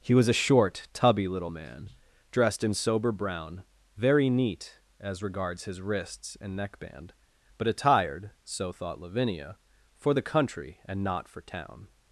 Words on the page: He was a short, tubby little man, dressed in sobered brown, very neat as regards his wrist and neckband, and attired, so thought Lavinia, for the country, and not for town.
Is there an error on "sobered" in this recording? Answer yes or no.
yes